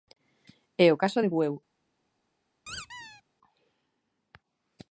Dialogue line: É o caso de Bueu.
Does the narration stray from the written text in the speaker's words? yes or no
no